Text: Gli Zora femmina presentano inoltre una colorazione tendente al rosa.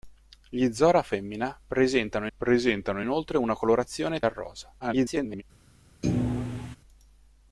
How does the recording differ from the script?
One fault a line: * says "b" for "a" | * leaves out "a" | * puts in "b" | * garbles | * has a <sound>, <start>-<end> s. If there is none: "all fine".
* puts in "presentano"
* leaves out "tendente"
* garbles
* has a thud, 6.0-6.8 s